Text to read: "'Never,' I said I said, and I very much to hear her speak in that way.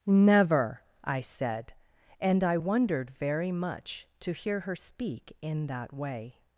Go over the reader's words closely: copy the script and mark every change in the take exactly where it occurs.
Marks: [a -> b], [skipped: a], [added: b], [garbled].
"'Never,' I said [skipped: I said,] and I [added: wondered] very much to hear her speak in that way.